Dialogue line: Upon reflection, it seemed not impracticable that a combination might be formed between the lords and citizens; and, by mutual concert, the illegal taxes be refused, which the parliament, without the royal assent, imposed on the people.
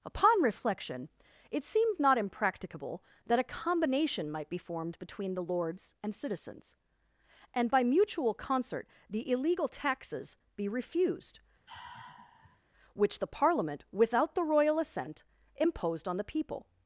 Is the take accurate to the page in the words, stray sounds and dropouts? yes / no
no